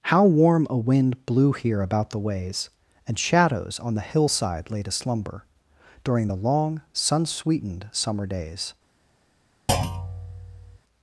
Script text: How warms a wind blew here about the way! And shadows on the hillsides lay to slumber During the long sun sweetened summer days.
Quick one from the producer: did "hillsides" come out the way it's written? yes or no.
no